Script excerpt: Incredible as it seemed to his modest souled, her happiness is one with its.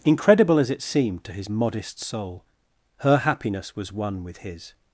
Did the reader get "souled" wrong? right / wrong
wrong